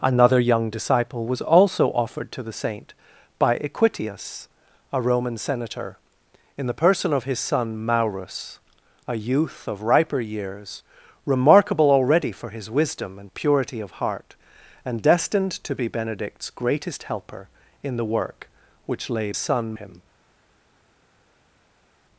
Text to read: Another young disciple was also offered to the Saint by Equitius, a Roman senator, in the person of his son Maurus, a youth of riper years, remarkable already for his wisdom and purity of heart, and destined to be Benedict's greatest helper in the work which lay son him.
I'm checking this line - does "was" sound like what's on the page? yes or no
yes